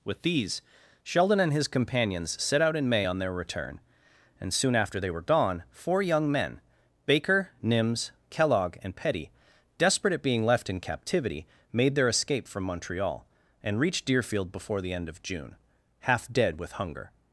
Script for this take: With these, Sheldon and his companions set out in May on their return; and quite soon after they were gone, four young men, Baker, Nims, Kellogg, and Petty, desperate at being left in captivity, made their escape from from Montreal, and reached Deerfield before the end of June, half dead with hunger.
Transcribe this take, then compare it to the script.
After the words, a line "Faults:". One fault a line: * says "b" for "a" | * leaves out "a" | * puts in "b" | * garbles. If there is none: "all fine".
With these, Sheldon and his companions set out in May on their return; and soon after they were gone, four young men, Baker, Nims, Kellogg, and Petty, desperate at being left in captivity, made their escape from Montreal, and reached Deerfield before the end of June, half dead with hunger.
Faults:
* leaves out "quite"
* leaves out "from"